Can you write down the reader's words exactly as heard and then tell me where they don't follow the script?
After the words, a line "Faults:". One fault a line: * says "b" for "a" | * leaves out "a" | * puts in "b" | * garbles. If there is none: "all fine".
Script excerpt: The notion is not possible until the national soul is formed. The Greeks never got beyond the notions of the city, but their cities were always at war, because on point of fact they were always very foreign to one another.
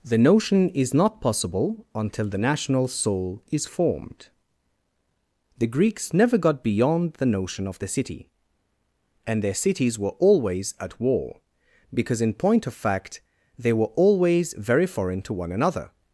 The notion is not possible until the national soul is formed. The Greeks never got beyond the notion of the city, and their cities were always at war, because in point of fact they were always very foreign to one another.
Faults:
* says "notion" for "notions"
* says "and" for "but"
* says "in" for "on"